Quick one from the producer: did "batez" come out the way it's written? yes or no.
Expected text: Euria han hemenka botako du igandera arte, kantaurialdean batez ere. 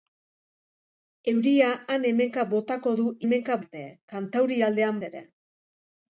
no